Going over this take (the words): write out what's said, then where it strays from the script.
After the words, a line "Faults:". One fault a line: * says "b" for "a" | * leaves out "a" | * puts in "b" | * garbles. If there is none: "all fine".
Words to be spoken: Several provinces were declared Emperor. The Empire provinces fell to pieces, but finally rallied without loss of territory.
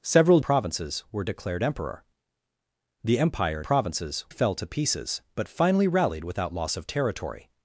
Several provinces were declared Emperor. The Empire provinces fell to pieces, but finally rallied without loss of territory.
Faults:
all fine